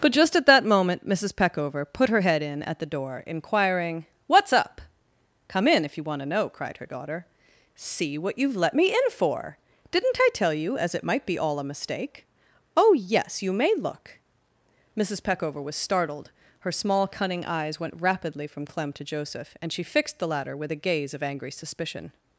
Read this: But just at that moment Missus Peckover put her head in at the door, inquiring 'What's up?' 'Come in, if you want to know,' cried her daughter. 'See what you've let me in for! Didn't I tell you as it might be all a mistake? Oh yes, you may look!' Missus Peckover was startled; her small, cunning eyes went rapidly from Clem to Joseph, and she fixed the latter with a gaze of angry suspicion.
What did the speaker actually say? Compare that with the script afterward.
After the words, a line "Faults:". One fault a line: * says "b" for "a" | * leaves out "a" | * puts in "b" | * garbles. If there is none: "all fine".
But just at that moment Missus Peckover put her head in at the door, inquiring 'What's up?' 'Come in, if you want to know,' cried her daughter. 'See what you've let me in for! Didn't I tell you as it might be all a mistake? Oh yes, you may look!' Missus Peckover was startled; her small, cunning eyes went rapidly from Clem to Joseph, and she fixed the latter with a gaze of angry suspicion.
Faults:
all fine